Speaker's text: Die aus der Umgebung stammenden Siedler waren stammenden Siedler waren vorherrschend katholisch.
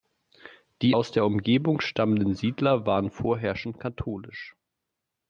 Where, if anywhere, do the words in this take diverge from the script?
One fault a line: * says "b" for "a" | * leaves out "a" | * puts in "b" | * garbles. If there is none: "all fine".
* leaves out "stammenden Siedler waren"